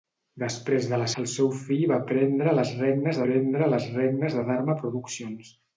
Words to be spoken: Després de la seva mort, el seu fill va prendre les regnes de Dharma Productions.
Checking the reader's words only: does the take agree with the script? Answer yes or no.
no